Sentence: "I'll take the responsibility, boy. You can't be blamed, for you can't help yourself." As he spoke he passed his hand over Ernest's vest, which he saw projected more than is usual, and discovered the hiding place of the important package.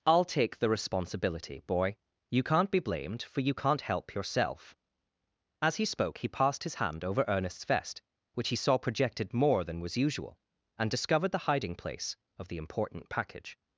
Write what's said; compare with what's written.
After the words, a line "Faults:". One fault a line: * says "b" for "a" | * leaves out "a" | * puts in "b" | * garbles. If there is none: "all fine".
"I'll take the responsibility, boy. You can't be blamed, for you can't help yourself." As he spoke he passed his hand over Ernest's vest, which he saw projected more than was usual, and discovered the hiding place of the important package.
Faults:
* says "was" for "is"